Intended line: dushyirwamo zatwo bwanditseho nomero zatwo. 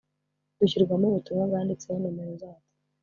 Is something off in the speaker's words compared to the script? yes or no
yes